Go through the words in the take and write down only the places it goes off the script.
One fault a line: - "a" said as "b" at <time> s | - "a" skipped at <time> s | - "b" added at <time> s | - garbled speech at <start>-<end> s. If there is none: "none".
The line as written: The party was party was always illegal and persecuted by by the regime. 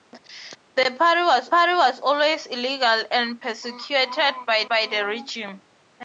none